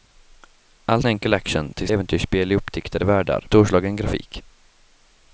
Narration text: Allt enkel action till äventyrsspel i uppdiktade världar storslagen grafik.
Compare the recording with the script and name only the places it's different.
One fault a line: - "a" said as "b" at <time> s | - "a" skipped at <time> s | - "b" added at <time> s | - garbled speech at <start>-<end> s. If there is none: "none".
none